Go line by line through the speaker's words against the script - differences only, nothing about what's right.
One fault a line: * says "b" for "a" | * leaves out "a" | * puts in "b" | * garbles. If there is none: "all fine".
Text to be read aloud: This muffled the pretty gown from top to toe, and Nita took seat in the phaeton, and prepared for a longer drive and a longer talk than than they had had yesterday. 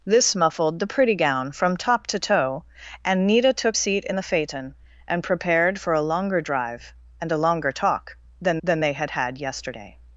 all fine